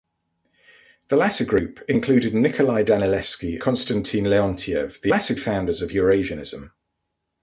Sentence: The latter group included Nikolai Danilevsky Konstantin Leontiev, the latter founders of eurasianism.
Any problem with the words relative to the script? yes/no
no